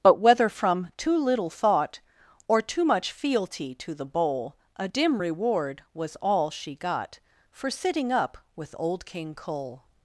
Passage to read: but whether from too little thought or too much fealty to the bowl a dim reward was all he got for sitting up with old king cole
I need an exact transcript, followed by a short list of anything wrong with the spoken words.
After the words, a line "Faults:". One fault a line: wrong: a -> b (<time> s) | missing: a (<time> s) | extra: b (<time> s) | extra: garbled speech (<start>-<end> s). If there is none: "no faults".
but whether from too little thought or too much fealty to the bowl a dim reward was all she got for sitting up with old king cole
Faults:
wrong: he -> she (6.5 s)